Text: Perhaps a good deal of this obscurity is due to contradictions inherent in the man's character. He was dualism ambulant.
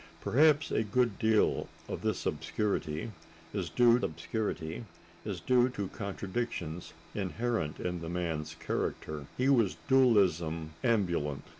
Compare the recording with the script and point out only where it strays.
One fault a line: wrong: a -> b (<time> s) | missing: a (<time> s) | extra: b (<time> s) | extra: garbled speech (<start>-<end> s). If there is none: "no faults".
extra: obscurity is due (4.0 s)